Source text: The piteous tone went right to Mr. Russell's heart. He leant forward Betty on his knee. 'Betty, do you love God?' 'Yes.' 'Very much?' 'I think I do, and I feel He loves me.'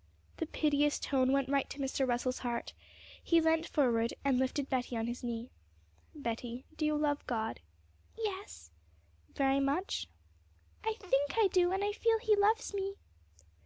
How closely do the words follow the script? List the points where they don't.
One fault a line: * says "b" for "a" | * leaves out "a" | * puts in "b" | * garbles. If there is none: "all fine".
* puts in "and lifted"